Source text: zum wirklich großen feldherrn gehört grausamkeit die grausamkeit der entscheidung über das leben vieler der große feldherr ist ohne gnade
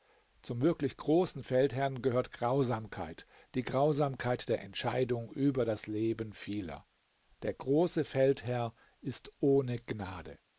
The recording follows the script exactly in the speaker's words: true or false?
true